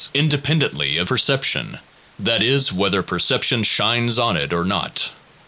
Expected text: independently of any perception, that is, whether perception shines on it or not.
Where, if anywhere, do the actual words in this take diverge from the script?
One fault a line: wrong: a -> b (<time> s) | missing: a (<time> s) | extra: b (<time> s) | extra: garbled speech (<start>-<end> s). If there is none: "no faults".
missing: any (1.1 s)